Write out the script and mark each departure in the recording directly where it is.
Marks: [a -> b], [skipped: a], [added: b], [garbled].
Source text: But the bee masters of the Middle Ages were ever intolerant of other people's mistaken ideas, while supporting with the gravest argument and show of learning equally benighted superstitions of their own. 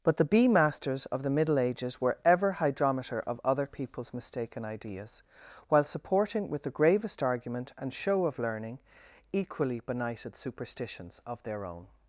But the bee masters of the Middle Ages were ever [intolerant -> hydrometer] of other people's mistaken ideas, while supporting with the gravest argument and show of learning equally benighted superstitions of their own.